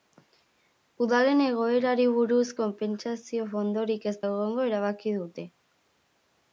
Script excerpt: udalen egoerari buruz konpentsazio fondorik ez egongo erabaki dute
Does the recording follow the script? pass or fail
pass